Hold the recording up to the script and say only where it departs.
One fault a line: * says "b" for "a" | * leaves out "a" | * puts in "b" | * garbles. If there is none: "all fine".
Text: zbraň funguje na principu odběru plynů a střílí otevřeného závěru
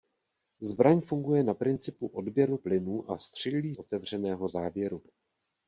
all fine